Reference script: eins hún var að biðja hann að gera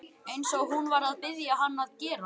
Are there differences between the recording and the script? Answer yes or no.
yes